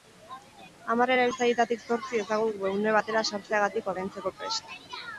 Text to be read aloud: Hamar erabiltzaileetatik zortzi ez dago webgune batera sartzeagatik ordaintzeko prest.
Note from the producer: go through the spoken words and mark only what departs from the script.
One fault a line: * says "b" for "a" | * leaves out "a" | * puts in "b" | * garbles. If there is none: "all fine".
all fine